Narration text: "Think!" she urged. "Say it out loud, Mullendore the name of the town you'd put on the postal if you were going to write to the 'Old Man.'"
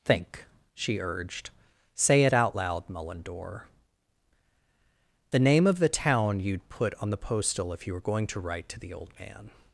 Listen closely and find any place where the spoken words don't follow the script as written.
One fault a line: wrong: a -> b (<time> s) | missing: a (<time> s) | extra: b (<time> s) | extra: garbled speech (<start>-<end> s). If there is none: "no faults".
no faults